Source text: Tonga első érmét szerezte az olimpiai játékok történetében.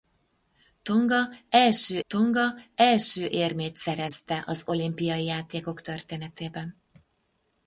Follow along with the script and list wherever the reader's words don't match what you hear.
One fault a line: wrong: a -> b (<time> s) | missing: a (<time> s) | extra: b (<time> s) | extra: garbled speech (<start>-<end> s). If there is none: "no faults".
extra: tonga első (2.1 s)